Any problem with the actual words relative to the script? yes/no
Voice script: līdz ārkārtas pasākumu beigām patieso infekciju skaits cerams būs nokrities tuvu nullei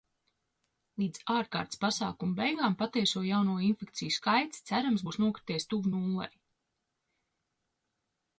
yes